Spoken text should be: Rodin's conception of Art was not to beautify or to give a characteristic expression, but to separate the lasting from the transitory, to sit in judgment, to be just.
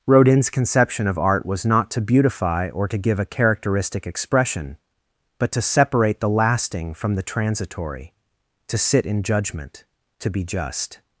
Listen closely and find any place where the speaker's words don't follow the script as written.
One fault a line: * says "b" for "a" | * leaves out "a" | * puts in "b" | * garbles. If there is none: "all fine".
all fine